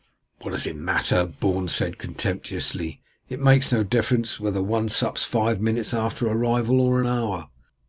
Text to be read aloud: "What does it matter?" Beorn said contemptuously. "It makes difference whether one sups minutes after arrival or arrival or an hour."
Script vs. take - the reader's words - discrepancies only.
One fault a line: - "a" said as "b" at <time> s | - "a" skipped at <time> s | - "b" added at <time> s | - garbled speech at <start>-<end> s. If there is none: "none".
- "no" added at 3.7 s
- "five" added at 5.2 s
- "arrival or" skipped at 7.0 s